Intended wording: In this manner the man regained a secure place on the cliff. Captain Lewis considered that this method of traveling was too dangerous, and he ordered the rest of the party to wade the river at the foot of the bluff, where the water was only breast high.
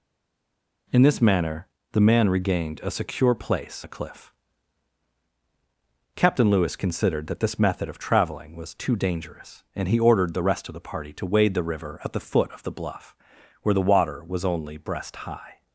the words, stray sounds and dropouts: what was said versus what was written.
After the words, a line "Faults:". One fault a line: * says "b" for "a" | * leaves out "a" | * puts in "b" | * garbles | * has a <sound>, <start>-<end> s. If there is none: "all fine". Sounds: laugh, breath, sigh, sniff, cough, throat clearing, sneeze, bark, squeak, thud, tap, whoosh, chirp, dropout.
In this manner the man regained a secure place the cliff. Captain Lewis considered that this method of traveling was too dangerous, and he ordered the rest of the party to wade the river at the foot of the bluff, where the water was only breast high.
Faults:
* leaves out "on"